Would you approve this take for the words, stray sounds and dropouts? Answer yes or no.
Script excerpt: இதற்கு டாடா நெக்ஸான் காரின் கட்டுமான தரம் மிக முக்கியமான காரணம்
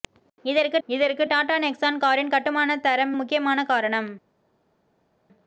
no